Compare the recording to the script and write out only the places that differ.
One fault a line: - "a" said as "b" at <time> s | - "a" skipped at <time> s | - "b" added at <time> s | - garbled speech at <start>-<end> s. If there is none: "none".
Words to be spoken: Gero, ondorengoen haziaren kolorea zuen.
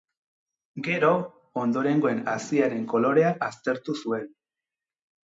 - "aztertu" added at 3.5 s